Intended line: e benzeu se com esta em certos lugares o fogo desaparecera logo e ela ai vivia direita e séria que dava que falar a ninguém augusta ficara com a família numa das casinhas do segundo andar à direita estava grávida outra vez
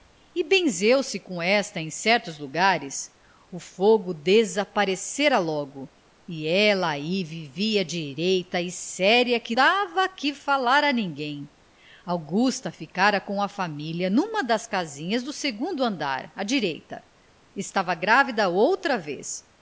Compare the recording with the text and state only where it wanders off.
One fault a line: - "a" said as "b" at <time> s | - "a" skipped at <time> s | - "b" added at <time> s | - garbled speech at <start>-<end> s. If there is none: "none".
none